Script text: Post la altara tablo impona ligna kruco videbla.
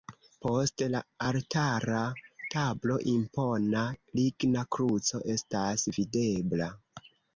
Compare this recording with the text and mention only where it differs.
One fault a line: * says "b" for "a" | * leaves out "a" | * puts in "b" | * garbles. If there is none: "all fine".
* puts in "estas"